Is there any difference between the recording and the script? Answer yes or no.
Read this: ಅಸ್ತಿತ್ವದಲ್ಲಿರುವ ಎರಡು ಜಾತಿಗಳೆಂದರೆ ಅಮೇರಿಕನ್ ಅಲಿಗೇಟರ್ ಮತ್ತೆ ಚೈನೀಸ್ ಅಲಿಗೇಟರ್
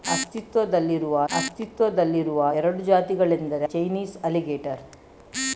yes